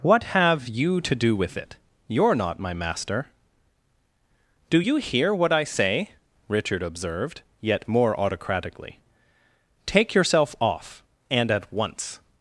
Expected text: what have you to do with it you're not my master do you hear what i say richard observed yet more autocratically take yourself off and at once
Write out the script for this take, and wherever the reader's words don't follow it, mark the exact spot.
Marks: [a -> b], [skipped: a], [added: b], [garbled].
what have you to do with it you're not my master do you hear what i say richard observed yet more autocratically take yourself off and at once